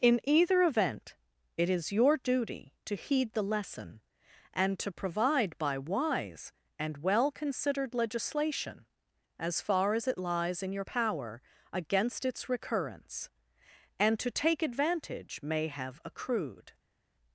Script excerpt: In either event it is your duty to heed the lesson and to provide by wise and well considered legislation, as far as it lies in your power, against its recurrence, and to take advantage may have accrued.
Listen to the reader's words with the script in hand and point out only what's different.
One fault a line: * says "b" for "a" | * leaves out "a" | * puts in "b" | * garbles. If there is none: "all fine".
all fine